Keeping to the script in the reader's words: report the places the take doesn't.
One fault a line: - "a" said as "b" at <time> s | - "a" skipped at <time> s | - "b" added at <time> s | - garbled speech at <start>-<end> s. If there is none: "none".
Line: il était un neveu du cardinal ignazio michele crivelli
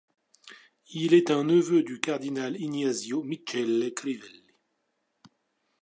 - "était" said as "est" at 1.1 s